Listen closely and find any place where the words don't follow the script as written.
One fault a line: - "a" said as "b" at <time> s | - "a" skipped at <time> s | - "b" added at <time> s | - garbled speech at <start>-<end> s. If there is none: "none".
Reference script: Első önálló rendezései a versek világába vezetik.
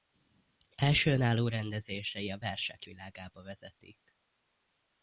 none